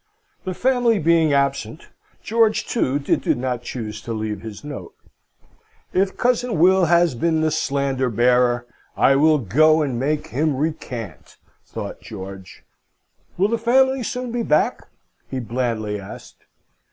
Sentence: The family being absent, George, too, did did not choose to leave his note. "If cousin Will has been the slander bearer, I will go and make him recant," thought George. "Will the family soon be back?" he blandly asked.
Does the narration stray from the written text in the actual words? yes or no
no